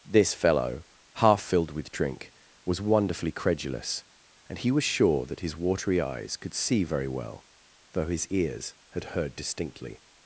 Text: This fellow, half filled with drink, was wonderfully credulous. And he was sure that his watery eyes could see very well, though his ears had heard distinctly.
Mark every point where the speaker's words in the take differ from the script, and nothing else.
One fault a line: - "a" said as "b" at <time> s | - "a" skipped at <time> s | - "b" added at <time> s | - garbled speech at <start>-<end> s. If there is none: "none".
none